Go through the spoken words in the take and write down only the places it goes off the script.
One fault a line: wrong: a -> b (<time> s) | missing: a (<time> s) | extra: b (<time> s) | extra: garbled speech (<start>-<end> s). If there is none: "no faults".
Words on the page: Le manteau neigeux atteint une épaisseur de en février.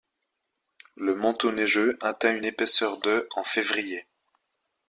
no faults